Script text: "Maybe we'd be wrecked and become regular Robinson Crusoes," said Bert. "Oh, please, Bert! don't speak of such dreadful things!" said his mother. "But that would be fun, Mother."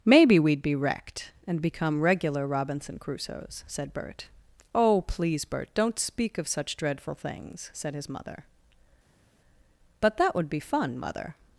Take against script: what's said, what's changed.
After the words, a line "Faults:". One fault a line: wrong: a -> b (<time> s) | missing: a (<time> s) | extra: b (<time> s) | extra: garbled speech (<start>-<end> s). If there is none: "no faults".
"Maybe we'd be wrecked and become regular Robinson Crusoes," said Bert. "Oh, please, Bert! don't speak of such dreadful things!" said his mother. "But that would be fun, Mother."
Faults:
no faults